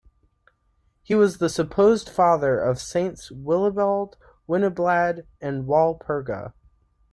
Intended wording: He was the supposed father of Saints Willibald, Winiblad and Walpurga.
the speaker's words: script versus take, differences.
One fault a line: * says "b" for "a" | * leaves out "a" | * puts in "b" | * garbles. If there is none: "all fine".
all fine